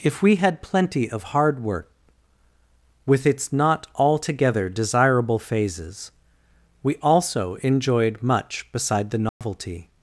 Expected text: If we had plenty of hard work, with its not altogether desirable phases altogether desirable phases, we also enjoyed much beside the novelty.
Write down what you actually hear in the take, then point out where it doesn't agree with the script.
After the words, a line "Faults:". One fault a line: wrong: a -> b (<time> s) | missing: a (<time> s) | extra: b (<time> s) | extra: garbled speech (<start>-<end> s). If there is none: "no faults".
If we had plenty of hard work, with its not altogether desirable phases, we also enjoyed much beside the novelty.
Faults:
missing: altogether desirable phases (6.1 s)